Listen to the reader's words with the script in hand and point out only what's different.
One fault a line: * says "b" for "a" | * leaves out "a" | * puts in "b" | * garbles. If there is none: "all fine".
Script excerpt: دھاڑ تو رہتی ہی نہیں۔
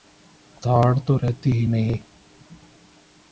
all fine